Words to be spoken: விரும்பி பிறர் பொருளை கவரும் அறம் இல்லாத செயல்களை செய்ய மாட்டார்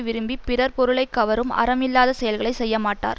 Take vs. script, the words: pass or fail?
pass